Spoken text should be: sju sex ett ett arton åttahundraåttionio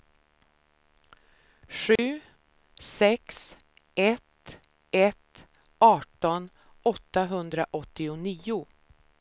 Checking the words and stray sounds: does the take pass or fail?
fail